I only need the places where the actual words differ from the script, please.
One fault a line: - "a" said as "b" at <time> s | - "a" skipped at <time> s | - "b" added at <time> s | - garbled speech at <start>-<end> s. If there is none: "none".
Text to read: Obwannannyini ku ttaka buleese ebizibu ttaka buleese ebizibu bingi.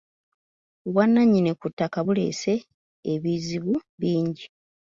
- "ttaka buleese ebizibu" skipped at 3.7 s